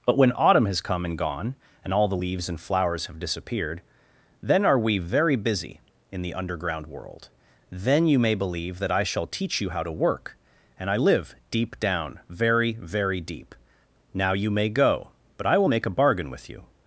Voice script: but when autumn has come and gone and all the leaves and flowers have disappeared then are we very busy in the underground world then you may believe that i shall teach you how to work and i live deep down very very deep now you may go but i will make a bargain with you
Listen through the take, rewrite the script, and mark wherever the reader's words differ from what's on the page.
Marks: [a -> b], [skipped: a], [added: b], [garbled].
but when autumn has come and gone and all the leaves and flowers have disappeared then are we very busy in the underground world then you may believe that i shall teach you how to work and i live deep down very very deep now you may go but i will make a bargain with you